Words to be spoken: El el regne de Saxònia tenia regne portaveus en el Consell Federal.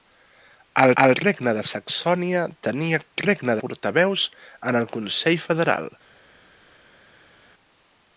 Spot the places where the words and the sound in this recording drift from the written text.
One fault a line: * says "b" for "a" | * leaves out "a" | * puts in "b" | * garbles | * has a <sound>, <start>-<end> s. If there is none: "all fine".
all fine